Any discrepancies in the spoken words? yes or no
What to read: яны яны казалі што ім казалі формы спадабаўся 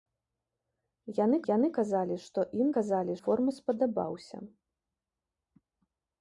no